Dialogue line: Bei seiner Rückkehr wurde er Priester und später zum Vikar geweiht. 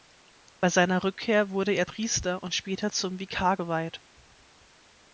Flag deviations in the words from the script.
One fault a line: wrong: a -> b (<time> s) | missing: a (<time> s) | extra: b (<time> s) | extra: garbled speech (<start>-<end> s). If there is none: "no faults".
no faults